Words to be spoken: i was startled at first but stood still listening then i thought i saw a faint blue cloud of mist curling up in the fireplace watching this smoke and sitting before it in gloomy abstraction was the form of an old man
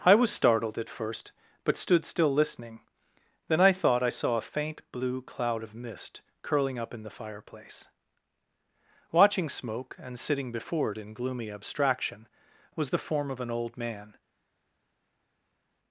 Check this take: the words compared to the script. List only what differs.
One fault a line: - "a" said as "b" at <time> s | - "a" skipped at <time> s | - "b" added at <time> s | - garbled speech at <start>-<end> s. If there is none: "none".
- "this" skipped at 9.5 s